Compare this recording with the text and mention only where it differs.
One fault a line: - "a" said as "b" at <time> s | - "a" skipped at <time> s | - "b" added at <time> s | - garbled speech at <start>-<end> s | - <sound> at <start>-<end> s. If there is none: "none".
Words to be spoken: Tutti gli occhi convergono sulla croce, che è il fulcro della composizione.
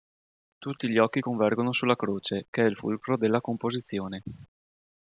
none